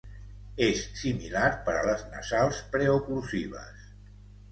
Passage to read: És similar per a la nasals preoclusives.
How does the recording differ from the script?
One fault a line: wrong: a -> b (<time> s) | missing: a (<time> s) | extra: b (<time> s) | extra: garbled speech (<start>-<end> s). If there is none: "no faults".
wrong: la -> les (1.9 s)